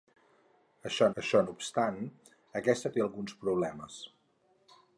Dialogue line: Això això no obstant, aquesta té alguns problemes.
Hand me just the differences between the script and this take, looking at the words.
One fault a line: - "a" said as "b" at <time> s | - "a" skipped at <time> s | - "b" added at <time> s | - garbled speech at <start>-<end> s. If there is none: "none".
none